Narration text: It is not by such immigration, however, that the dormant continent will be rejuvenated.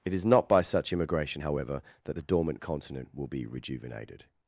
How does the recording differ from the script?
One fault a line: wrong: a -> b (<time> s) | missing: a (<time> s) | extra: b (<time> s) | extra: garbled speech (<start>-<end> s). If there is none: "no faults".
no faults